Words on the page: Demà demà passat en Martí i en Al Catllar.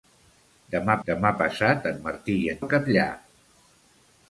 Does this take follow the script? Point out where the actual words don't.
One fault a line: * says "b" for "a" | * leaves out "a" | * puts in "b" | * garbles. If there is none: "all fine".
all fine